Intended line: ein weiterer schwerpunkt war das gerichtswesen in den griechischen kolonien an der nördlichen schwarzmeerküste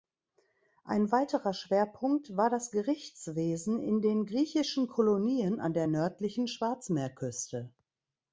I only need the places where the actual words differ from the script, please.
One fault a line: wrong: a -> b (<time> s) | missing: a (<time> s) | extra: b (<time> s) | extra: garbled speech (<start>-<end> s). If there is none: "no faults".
no faults